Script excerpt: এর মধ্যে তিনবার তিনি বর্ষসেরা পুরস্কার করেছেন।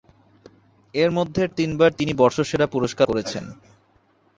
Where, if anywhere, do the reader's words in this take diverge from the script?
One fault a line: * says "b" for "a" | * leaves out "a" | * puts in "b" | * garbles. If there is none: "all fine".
all fine